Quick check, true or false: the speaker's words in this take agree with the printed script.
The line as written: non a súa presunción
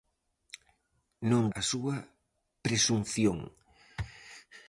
true